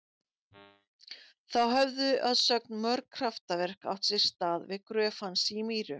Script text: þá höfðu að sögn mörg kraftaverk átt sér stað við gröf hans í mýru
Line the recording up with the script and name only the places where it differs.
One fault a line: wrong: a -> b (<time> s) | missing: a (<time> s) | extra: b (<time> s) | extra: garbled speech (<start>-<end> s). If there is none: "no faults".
no faults